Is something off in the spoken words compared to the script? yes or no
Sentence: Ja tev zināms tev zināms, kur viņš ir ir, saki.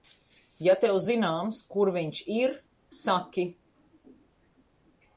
yes